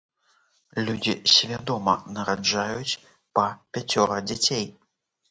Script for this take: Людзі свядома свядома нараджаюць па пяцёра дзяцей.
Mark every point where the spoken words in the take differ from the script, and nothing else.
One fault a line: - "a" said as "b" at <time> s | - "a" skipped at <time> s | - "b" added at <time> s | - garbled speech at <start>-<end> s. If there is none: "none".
- "свядома" skipped at 1.9 s